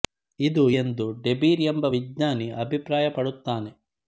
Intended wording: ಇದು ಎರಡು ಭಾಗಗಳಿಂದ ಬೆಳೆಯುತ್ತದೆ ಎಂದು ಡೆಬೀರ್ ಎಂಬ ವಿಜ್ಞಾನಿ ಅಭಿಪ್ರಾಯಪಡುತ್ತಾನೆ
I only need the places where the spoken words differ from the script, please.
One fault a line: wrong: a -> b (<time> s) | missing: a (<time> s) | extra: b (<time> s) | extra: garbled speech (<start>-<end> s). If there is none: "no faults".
missing: ಎರಡು ಭಾಗಗಳಿಂದ ಬೆಳೆಯುತ್ತದೆ (0.7 s)